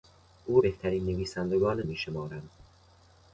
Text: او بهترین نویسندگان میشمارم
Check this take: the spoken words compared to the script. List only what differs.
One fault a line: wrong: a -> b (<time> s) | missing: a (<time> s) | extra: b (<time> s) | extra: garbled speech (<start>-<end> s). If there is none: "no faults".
no faults